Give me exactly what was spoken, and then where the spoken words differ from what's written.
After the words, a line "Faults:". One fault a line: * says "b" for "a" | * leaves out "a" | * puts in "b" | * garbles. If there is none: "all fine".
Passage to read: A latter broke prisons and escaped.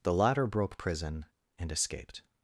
The latter broke prison and escaped.
Faults:
* says "The" for "A"
* says "prison" for "prisons"